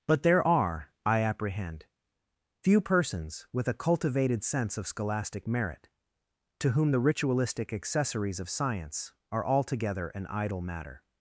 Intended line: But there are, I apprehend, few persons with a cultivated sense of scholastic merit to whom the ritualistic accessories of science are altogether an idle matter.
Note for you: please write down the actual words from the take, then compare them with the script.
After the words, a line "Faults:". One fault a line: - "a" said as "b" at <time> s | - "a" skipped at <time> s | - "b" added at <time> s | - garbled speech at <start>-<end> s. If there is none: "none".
But there are, I apprehend, few persons with a cultivated sense of scholastic merit to whom the ritualistic accessories of science are altogether an idle matter.
Faults:
none